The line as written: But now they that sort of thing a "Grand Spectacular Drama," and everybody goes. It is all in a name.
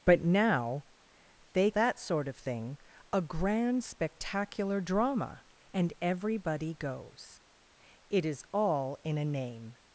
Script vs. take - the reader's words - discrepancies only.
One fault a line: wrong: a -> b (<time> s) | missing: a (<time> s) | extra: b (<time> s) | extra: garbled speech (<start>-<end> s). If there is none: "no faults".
no faults